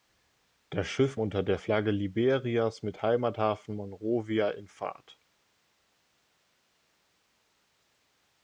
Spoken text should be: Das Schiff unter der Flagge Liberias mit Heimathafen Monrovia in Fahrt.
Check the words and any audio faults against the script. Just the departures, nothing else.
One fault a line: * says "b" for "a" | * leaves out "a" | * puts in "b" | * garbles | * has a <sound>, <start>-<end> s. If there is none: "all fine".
all fine